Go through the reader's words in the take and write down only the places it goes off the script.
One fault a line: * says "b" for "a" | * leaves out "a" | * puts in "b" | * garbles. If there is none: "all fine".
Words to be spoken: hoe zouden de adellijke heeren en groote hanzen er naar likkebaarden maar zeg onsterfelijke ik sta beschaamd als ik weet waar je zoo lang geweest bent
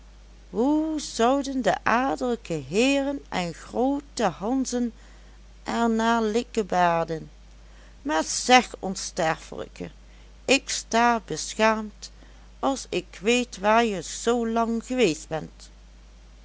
all fine